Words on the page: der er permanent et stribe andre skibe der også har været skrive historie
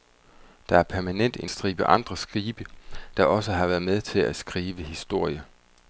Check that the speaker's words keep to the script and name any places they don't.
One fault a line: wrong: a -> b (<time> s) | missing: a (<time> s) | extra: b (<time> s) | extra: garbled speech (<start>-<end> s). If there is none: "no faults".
wrong: et -> en (1.4 s)
extra: med til at (3.8 s)